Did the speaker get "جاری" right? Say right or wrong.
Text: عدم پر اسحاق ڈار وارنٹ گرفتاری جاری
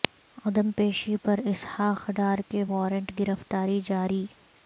right